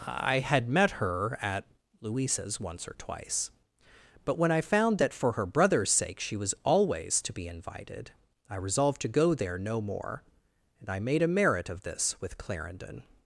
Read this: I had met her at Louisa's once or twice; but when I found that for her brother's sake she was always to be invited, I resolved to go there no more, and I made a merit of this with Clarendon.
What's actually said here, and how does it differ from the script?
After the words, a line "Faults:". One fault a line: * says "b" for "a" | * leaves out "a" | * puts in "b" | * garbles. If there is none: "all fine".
I had met her at Louisa's once or twice; but when I found that for her brother's sake she was always to be invited, I resolved to go there no more, and I made a merit of this with Clarendon.
Faults:
all fine